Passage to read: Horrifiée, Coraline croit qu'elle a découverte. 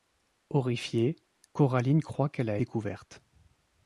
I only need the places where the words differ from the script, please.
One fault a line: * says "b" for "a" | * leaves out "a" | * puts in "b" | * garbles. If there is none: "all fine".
all fine